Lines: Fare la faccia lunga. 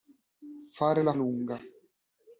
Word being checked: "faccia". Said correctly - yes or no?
no